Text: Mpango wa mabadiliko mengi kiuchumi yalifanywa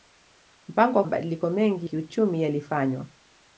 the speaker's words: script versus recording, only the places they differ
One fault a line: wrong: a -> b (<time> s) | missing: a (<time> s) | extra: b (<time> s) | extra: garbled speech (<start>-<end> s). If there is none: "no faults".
no faults